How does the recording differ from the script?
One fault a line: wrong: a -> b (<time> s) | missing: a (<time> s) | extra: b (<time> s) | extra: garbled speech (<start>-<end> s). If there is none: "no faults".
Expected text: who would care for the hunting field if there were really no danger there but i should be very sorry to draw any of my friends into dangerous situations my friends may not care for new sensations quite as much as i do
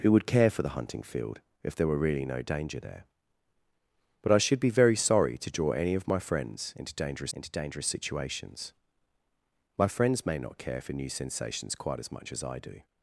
extra: into dangerous (7.3 s)